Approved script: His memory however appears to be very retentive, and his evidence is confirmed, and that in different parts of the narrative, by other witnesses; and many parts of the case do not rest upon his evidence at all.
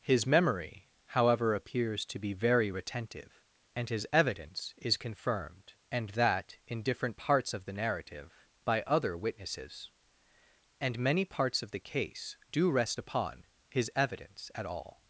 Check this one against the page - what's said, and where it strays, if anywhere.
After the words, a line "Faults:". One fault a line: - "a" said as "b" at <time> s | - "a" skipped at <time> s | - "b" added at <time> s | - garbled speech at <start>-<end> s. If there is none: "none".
His memory however appears to be very retentive, and his evidence is confirmed, and that in different parts of the narrative, by other witnesses; and many parts of the case do rest upon his evidence at all.
Faults:
- "not" skipped at 12.7 s